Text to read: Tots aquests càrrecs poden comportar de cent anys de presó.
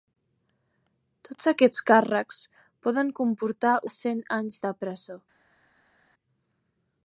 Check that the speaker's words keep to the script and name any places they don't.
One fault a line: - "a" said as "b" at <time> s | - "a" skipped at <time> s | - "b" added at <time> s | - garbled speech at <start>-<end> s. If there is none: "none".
none